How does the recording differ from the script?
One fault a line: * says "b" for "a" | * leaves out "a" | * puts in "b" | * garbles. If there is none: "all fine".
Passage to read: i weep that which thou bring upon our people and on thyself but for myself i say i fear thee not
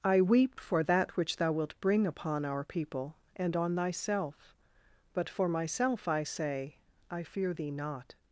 * puts in "for"
* puts in "wilt"